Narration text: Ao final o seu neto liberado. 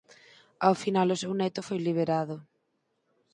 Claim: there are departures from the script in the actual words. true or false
true